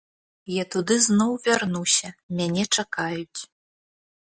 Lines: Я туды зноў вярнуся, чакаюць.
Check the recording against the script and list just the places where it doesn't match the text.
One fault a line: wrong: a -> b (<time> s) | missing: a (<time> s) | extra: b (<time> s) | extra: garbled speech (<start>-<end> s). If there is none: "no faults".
extra: мяне (2.4 s)